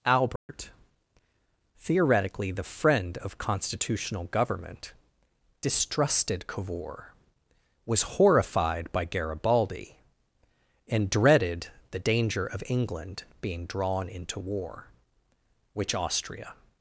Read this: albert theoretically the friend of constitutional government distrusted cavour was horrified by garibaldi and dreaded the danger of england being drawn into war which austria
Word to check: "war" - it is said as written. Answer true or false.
true